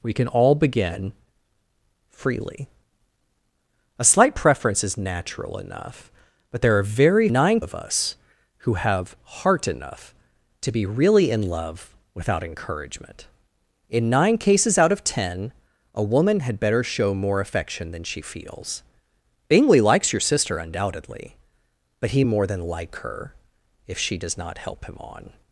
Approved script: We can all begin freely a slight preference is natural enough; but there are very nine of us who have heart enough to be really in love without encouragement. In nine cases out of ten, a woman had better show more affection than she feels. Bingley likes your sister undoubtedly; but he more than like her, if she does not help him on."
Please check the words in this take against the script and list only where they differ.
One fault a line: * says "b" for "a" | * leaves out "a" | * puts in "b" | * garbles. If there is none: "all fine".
all fine